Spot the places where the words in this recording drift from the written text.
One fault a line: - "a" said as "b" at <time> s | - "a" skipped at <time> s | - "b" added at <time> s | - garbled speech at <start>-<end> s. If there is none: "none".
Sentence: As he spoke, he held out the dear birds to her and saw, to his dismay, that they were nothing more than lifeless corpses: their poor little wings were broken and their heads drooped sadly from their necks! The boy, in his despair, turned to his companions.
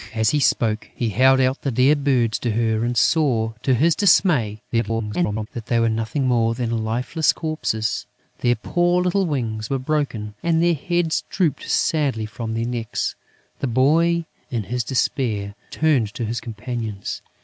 - garbled speech at 4.7-5.5 s